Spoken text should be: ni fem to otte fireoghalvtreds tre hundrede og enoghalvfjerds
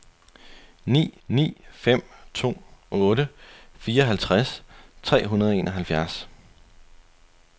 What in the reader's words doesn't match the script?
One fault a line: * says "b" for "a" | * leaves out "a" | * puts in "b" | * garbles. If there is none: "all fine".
* puts in "ni"